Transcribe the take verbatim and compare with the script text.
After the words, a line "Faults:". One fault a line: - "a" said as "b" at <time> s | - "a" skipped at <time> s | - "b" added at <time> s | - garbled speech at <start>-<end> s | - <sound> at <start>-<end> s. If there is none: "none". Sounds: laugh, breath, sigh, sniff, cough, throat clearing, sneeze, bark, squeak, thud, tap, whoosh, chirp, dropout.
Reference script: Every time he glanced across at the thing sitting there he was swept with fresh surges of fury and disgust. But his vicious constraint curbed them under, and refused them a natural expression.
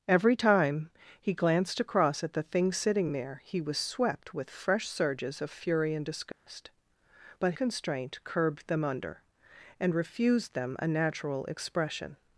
Every time he glanced across at the thing sitting there he was swept with fresh surges of fury and disgust. But constraint curbed them under, and refused them a natural expression.
Faults:
- dropout at 6.3-6.5 s
- "his vicious" skipped at 7.5 s